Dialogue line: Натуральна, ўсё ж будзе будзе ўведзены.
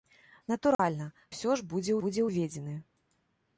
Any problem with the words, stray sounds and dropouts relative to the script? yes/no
yes